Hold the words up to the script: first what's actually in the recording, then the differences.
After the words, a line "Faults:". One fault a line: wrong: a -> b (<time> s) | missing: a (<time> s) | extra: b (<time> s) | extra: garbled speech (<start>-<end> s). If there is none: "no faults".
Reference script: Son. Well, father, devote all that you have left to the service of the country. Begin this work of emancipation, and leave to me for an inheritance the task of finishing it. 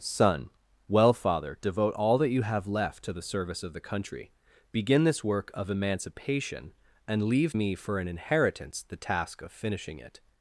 Son. Well, father, devote all that you have left to the service of the country. Begin this work of emancipation, and leave me for an inheritance the task of finishing it.
Faults:
missing: to (7.5 s)